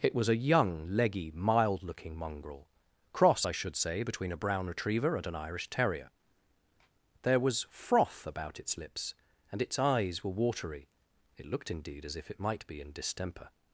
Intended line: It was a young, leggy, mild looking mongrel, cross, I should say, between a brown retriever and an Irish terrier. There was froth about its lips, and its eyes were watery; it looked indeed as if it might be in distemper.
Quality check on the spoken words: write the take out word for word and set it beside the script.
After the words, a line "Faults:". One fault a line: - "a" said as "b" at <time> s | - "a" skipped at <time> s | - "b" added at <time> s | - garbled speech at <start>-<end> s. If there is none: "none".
It was a young, leggy, mild looking mongrel, cross, I should say, between a brown retriever and an Irish terrier. There was froth about its lips, and its eyes were watery; it looked indeed as if it might be in distemper.
Faults:
none